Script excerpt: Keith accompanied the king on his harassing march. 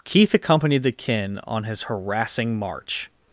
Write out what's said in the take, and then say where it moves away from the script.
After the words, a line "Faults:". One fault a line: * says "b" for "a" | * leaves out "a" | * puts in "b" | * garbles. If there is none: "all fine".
Keith accompanied the kin on his harassing march.
Faults:
* says "kin" for "king"